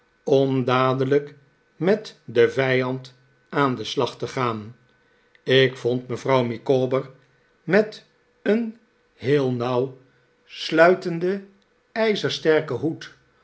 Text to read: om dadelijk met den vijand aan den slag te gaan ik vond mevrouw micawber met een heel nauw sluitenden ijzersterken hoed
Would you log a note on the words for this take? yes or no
no